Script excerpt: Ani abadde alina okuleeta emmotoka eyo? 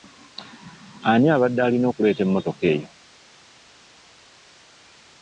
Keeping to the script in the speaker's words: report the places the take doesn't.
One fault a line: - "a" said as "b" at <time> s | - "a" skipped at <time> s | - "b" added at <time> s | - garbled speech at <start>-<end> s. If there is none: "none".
none